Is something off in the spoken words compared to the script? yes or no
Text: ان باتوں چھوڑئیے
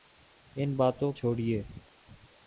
no